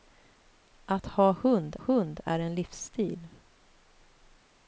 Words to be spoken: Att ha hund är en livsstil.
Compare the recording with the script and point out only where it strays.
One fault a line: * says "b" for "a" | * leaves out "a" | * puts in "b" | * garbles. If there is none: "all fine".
* puts in "hund"